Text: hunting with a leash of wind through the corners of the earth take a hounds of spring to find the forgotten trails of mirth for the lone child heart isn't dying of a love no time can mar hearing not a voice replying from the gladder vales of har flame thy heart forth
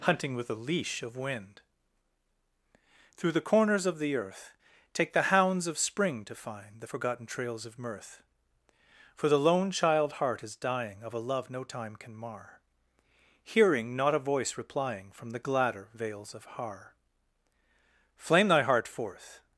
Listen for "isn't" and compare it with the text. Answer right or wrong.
wrong